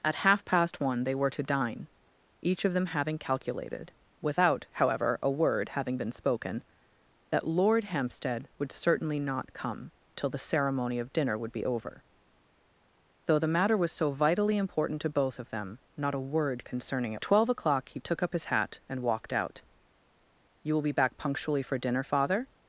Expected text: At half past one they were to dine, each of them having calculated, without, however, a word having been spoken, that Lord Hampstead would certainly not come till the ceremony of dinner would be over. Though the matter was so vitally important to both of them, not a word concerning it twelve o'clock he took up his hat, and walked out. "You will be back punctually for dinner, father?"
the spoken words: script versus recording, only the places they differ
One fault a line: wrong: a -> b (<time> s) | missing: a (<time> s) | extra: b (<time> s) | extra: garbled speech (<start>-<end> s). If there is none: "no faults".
no faults